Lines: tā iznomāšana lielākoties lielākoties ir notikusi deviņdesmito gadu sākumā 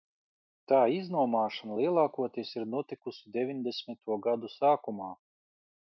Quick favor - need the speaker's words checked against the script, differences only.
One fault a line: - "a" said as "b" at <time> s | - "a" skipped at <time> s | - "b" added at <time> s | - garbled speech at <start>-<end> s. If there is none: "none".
- "lielākoties" skipped at 2.5 s